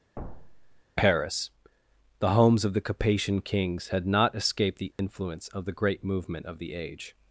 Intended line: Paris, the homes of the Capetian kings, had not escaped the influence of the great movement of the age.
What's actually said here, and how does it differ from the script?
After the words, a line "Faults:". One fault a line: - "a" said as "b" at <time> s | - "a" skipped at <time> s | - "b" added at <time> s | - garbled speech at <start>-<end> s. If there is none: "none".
Paris, the homes of the Capetian kings, had not escaped the influence of the great movement of the age.
Faults:
none